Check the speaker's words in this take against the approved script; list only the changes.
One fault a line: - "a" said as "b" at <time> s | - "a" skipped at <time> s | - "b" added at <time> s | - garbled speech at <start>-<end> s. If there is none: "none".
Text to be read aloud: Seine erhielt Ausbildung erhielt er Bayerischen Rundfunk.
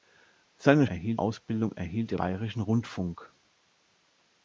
none